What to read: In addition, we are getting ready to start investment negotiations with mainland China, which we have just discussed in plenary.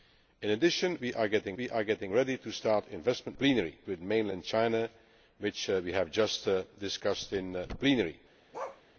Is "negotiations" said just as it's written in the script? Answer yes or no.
no